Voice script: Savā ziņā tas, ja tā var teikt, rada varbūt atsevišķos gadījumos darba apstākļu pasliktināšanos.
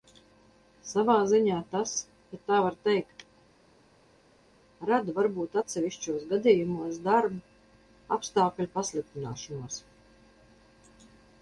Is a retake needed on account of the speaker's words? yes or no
no